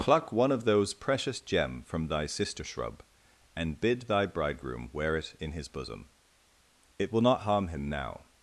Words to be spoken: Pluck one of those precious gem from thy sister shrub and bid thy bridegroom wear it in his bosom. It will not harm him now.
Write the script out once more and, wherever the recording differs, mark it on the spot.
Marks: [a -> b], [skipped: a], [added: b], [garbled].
Pluck one of those precious gem from thy sister shrub and bid thy bridegroom wear it in his bosom. It will not harm him now.